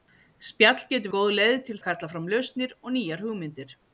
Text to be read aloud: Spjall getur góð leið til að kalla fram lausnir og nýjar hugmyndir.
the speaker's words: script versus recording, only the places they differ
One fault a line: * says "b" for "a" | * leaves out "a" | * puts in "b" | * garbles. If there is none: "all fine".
all fine